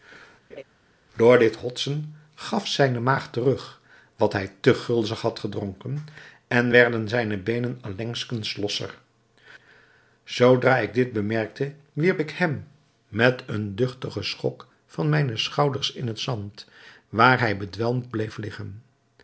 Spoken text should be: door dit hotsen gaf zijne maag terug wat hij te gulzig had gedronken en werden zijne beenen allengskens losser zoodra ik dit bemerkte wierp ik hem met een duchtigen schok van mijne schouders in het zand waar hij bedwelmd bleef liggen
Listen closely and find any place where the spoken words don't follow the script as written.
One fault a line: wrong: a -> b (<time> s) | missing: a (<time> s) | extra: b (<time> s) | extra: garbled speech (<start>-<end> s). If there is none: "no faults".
no faults